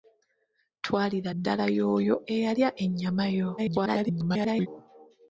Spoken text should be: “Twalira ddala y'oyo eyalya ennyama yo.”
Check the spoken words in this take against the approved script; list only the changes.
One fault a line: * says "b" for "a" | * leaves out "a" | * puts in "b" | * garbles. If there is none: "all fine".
* garbles